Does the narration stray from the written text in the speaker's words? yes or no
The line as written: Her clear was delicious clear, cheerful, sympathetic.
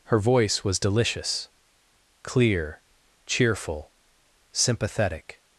yes